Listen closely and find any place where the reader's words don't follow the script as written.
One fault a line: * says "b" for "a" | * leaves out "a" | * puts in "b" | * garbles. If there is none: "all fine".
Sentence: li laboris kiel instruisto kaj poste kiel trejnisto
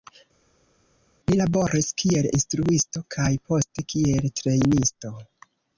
all fine